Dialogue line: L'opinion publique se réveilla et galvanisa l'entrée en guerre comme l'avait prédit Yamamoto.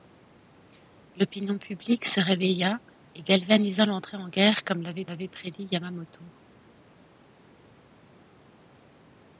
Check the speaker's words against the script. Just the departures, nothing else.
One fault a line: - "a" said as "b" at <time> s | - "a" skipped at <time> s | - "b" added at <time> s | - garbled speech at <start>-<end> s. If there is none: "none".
- "l'avait" added at 5.0 s